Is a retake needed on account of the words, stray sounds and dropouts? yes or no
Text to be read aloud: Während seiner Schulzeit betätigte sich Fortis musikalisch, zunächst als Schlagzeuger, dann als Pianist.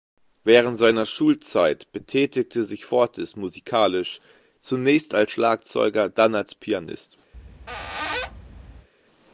yes